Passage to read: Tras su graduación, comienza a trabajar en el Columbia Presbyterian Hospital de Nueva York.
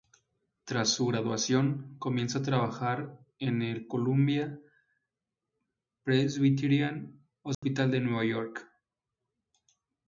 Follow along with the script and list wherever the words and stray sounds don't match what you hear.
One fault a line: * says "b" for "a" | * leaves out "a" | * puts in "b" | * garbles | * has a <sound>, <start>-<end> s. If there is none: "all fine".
* has a dropout, 7.5-7.6 s